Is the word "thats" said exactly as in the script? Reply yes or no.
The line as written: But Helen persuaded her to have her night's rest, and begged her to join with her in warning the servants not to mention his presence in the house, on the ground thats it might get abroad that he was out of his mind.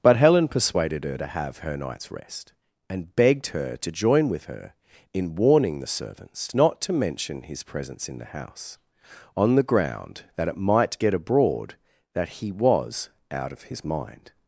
no